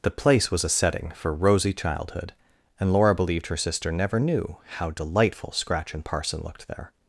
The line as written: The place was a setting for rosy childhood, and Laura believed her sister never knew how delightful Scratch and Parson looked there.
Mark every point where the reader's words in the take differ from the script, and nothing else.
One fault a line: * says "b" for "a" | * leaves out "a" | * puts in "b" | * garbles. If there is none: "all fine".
all fine